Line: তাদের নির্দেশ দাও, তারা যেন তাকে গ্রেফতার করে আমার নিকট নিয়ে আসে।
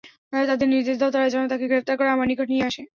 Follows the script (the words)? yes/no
yes